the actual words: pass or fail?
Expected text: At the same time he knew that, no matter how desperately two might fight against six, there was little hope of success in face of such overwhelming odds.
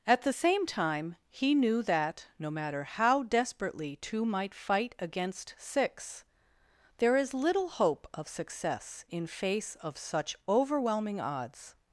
fail